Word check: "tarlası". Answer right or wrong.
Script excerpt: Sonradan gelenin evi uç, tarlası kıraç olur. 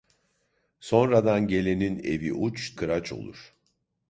wrong